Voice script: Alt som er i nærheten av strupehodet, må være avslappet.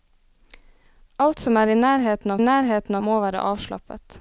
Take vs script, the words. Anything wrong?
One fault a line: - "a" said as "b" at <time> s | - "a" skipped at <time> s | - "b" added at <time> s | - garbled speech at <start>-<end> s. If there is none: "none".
- "strupehodet" said as "nærheten" at 2.4 s